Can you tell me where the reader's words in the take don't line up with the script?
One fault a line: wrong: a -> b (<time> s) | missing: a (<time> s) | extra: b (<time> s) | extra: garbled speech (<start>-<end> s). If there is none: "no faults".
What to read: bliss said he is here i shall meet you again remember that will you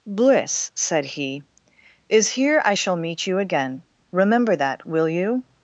no faults